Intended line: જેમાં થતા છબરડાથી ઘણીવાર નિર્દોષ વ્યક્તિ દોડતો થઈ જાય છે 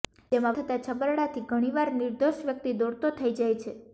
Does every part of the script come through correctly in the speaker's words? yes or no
yes